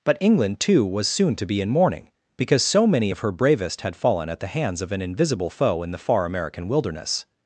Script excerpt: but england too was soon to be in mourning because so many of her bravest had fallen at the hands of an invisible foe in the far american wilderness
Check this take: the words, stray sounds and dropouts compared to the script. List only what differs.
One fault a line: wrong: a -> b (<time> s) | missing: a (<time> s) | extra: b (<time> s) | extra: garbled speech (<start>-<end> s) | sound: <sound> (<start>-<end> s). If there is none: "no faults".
no faults